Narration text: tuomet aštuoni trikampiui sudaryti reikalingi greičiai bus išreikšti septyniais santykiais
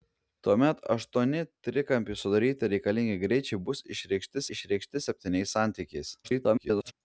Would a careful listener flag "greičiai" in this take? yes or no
no